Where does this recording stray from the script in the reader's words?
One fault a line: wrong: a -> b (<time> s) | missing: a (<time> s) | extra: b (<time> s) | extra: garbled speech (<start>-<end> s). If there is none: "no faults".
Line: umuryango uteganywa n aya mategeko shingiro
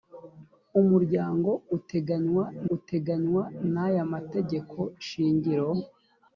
extra: uteganywa (2.8 s)